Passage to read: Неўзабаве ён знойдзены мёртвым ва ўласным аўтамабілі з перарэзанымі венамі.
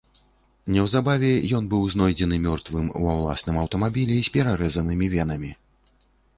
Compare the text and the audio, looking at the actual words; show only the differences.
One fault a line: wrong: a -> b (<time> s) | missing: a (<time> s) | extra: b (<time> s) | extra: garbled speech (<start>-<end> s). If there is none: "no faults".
extra: быў (1.7 s)